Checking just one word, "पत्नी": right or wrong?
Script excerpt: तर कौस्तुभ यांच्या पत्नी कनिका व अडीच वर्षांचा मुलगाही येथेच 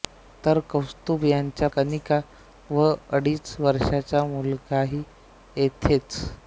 wrong